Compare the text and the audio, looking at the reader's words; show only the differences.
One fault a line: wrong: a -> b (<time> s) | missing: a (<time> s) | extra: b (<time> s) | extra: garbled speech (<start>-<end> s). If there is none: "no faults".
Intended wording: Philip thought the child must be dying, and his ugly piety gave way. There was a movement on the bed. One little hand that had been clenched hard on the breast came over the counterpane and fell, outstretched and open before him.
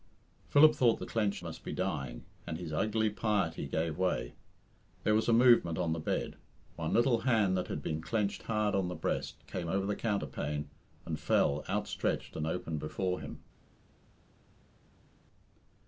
wrong: child -> clenched (1.0 s)